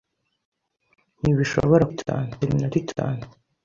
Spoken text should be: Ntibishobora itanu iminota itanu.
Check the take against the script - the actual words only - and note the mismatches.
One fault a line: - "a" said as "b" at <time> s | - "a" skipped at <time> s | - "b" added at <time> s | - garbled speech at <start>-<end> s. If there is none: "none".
none